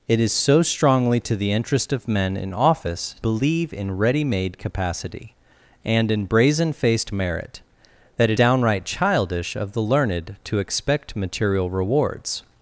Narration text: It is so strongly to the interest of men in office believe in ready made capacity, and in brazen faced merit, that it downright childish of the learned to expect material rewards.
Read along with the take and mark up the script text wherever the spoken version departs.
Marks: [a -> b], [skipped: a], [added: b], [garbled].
It is so strongly to the interest of men in office believe in ready made capacity, and in brazen faced merit, that it downright childish of the learned to expect material rewards.